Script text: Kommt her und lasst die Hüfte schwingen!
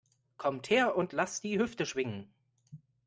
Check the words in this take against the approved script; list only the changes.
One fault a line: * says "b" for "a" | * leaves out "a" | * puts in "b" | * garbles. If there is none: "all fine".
all fine